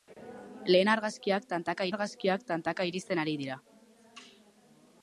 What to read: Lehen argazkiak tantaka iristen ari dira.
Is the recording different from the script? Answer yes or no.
yes